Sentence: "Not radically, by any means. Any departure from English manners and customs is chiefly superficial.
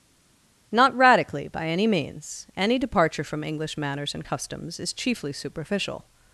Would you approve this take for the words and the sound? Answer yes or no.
yes